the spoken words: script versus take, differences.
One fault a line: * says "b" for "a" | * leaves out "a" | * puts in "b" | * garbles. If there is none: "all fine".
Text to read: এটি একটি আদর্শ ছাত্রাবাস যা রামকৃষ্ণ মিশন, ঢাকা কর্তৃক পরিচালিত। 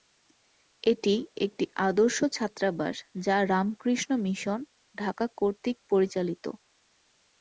all fine